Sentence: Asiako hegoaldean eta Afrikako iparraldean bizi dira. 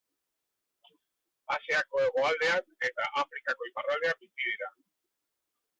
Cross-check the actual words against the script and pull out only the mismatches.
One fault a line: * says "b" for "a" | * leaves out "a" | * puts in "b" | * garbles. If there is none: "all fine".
all fine